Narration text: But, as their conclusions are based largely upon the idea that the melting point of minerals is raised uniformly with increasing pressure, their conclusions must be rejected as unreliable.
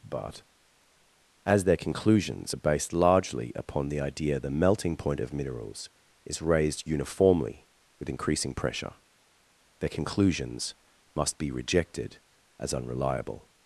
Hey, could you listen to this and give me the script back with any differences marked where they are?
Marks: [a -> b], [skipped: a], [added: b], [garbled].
But, as their conclusions are based largely upon the idea [skipped: that] the melting point of minerals is raised uniformly with increasing pressure, their conclusions must be rejected as unreliable.